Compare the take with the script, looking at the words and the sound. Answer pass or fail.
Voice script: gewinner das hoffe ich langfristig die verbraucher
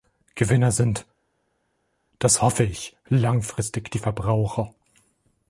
fail